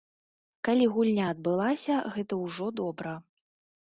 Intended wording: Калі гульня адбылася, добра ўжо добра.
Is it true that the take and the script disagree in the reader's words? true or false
true